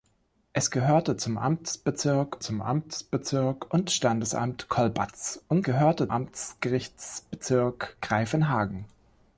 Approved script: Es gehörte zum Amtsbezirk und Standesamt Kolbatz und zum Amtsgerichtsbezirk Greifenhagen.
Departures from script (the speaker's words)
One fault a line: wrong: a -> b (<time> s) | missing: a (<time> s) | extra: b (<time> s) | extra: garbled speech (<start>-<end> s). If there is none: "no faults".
extra: zum Amtsbezirk (2.4 s)
wrong: zum -> gehörte (5.6 s)